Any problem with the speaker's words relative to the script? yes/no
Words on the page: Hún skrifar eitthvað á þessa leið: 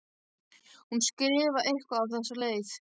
no